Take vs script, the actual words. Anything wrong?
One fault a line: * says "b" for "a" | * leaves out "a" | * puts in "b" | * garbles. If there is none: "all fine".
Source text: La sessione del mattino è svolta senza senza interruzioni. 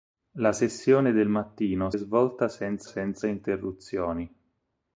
all fine